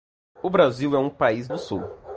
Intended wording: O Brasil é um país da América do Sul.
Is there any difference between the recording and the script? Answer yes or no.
yes